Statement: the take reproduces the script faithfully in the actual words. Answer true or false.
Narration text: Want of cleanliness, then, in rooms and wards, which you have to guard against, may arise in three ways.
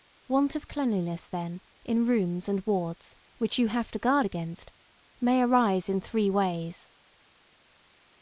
true